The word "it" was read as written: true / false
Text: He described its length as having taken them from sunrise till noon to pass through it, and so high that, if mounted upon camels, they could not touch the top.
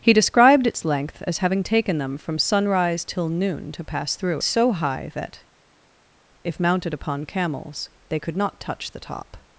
false